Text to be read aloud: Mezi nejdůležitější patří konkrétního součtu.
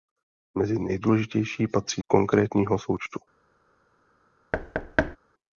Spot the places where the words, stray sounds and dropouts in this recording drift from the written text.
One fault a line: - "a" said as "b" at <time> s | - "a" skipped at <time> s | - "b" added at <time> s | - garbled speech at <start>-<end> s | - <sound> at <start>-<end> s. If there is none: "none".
- thud at 4.5-5.2 s